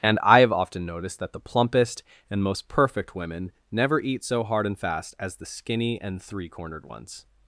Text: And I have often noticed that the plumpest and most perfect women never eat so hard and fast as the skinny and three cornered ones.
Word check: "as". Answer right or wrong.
right